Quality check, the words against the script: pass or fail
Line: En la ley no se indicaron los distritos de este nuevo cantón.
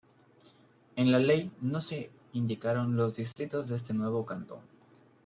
pass